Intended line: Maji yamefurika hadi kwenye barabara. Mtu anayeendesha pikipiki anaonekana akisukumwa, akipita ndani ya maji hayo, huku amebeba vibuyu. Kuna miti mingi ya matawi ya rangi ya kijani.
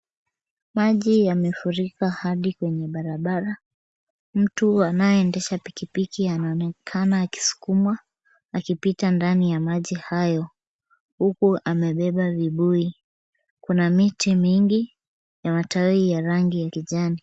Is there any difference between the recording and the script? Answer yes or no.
no